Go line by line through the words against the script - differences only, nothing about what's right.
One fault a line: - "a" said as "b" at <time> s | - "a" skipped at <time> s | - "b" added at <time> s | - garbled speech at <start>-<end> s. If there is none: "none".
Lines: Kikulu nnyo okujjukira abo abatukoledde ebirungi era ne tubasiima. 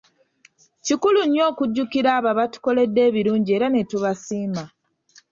none